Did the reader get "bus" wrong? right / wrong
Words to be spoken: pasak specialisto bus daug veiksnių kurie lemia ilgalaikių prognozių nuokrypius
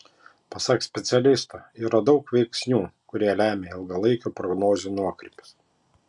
wrong